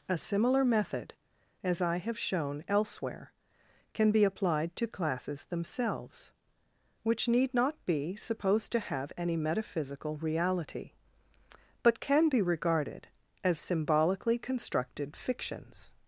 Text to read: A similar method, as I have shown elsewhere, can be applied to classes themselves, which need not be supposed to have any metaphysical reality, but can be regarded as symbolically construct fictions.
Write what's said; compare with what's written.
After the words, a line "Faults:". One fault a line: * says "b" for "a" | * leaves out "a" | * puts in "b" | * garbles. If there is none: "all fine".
A similar method, as I have shown elsewhere, can be applied to classes themselves, which need not be supposed to have any metaphysical reality, but can be regarded as symbolically constructed fictions.
Faults:
* says "constructed" for "construct"